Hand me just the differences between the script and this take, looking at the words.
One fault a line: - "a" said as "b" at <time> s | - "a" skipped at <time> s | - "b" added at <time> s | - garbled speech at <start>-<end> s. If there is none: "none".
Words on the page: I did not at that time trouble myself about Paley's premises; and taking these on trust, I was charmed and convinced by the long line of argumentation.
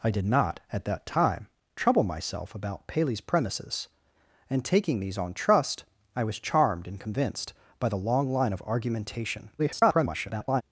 - garbled speech at 9.6-10.6 s